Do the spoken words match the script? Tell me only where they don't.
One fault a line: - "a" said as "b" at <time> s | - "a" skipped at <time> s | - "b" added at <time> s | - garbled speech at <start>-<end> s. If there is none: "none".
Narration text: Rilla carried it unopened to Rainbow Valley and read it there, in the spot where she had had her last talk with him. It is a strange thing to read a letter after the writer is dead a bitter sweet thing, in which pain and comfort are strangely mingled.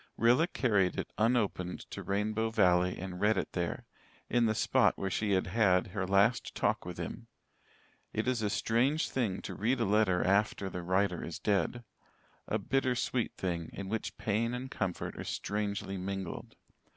none